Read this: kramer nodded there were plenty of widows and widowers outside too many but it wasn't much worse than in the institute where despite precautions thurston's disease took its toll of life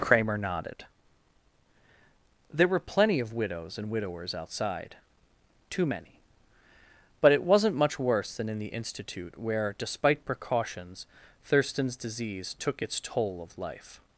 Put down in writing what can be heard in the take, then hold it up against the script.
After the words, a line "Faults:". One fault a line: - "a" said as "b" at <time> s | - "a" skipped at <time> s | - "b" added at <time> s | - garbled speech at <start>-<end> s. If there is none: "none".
kramer nodded there were plenty of widows and widowers outside too many but it wasn't much worse than in the institute where despite precautions thurston's disease took its toll of life
Faults:
none